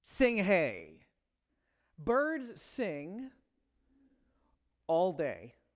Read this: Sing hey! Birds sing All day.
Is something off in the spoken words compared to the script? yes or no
no